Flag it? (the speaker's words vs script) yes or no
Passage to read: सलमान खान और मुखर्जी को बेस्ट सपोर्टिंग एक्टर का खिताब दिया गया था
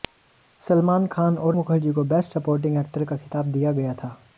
no